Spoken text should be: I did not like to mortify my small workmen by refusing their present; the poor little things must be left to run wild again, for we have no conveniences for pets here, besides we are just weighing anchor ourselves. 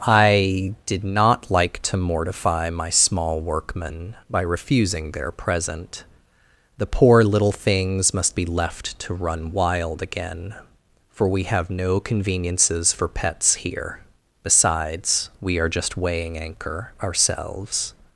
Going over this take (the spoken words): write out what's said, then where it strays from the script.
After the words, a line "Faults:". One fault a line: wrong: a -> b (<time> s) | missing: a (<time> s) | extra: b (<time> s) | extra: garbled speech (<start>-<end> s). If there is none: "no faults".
I did not like to mortify my small workmen by refusing their present; the poor little things must be left to run wild again, for we have no conveniences for pets here, besides we are just weighing anchor ourselves.
Faults:
no faults